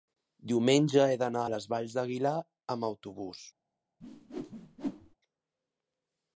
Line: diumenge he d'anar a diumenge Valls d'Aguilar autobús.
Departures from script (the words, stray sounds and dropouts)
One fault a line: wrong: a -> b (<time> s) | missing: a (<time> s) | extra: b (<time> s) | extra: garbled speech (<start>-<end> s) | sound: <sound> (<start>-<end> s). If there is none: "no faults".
wrong: diumenge -> les (1.5 s)
extra: amb (2.8 s)
sound: whoosh (4.0-5.2 s)